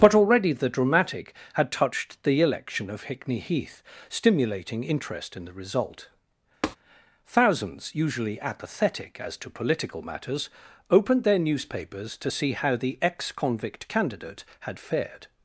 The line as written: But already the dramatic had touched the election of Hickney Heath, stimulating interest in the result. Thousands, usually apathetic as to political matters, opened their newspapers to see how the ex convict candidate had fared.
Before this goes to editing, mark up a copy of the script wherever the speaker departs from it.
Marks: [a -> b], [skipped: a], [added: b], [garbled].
But already the dramatic had touched the election of Hickney Heath, stimulating interest in the result. Thousands, usually apathetic as to political matters, opened their newspapers to see how the ex convict candidate had fared.